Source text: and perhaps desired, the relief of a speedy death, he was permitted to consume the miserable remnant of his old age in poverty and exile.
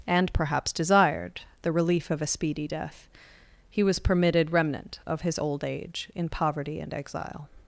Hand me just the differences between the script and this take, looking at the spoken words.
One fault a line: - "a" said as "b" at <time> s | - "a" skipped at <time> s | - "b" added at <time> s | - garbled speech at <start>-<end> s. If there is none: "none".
- "to consume the miserable" skipped at 4.5 s